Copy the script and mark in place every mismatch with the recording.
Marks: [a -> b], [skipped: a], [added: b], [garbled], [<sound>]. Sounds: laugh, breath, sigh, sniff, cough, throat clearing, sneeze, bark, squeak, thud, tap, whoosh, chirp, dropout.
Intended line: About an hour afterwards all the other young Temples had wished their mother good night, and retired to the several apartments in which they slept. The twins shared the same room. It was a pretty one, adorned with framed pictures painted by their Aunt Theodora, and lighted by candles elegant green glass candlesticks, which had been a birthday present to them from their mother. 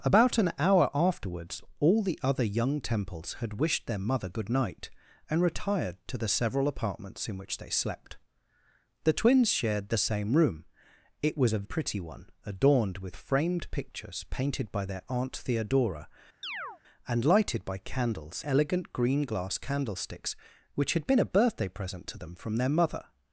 About an hour afterwards all the other young Temples had wished their mother good night, and retired to the several apartments in which they slept. The twins shared the same room. It was a pretty one, adorned with framed pictures painted by their Aunt Theodora, [chirp] and lighted by candles elegant green glass candlesticks, which had been a birthday present to them from their mother.